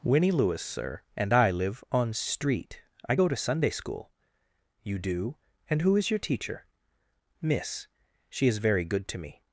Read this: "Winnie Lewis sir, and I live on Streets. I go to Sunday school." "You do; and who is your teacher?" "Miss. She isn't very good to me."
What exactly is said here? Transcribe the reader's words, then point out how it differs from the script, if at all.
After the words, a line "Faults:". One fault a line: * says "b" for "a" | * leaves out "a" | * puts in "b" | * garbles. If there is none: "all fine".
"Winnie Lewis sir, and I live on Street. I go to Sunday school." "You do; and who is your teacher?" "Miss. She is very good to me."
Faults:
* says "Street" for "Streets"
* says "is" for "isn't"